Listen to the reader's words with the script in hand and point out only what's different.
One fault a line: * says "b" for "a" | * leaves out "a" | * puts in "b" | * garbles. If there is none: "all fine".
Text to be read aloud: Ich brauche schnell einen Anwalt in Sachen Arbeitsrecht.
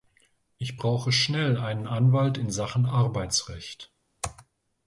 all fine